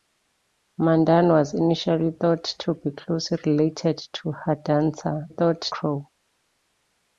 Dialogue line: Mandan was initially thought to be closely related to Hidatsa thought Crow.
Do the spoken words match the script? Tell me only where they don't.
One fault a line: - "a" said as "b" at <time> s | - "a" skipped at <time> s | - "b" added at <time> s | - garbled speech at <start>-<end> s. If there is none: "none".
none